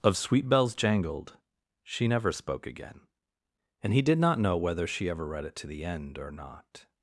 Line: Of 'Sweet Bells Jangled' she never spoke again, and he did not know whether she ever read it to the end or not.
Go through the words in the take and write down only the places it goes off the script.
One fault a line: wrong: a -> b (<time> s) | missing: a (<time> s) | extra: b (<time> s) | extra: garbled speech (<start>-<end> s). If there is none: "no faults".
no faults